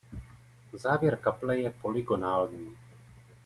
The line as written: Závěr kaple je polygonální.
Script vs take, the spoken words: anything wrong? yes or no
no